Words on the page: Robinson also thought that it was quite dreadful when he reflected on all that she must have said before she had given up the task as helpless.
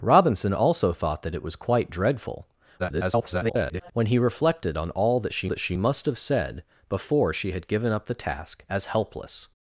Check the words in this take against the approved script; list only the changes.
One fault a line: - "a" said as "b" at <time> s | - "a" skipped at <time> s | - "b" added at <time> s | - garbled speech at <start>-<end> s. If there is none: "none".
- garbled speech at 2.8-3.9 s
- "that she" added at 5.5 s